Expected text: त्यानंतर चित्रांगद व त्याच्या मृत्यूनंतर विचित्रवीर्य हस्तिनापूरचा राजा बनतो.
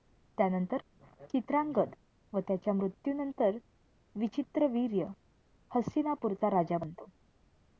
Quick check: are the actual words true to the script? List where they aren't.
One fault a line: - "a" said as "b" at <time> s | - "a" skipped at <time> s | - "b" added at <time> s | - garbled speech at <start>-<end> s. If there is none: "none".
none